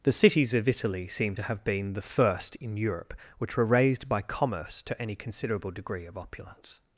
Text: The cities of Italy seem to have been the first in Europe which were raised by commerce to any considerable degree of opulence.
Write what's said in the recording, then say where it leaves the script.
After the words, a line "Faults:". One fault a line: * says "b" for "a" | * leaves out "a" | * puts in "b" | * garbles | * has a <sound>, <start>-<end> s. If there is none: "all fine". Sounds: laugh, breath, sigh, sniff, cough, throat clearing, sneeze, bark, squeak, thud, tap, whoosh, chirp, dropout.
The cities of Italy seem to have been the first in Europe which were raised by commerce to any considerable degree of opulence.
Faults:
all fine